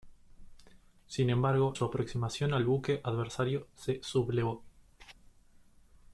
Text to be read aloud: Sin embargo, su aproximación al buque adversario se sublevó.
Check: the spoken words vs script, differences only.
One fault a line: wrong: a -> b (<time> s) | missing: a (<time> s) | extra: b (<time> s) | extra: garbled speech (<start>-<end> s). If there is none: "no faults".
no faults